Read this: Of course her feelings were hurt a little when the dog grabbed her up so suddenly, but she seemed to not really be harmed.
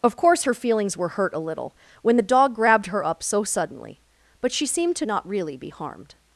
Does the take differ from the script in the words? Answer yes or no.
no